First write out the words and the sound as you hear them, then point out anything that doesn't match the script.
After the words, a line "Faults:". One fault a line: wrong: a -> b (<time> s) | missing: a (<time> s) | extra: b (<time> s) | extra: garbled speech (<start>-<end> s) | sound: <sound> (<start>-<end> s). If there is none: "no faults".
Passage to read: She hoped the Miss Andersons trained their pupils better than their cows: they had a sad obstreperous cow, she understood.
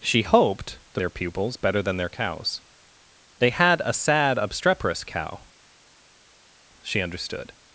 She hoped the Their pupils better than their cows: they had a sad obstreperous cow, she understood.
Faults:
missing: Miss Andersons trained (1.0 s)